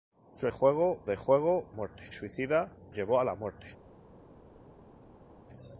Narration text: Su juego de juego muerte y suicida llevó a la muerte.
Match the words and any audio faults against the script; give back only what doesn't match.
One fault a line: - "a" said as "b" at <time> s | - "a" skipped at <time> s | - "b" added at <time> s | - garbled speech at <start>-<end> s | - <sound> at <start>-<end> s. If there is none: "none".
none